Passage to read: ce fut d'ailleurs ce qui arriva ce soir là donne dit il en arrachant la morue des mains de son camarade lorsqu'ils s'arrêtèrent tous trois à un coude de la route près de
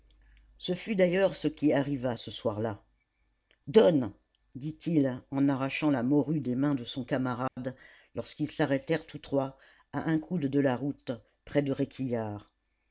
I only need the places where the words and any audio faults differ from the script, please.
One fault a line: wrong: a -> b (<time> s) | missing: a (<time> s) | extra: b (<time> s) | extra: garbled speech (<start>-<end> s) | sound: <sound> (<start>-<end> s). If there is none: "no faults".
sound: dropout (7.5-7.6 s)